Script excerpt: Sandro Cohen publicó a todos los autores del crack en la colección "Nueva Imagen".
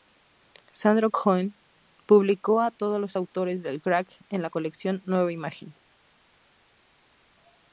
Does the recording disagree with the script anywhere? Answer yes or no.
no